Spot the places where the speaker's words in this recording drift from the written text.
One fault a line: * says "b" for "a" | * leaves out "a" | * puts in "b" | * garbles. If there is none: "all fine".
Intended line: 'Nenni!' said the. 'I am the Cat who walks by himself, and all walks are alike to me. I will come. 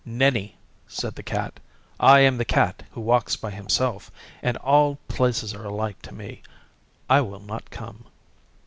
* puts in "Cat"
* says "places" for "walks"
* puts in "not"